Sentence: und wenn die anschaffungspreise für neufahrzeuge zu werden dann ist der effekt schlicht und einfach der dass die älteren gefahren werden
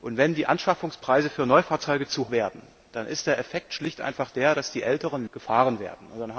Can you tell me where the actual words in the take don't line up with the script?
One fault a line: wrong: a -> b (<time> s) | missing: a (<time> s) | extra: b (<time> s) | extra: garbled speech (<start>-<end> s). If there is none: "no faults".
no faults